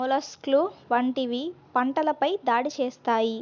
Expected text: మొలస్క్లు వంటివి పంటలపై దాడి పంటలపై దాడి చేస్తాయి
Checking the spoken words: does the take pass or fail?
fail